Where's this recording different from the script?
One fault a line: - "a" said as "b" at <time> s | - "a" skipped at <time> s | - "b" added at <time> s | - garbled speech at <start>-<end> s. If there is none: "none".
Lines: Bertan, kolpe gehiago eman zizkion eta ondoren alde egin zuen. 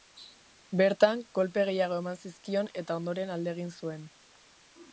none